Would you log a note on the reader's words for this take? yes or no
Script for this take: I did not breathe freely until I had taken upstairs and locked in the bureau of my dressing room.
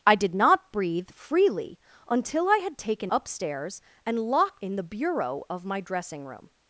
no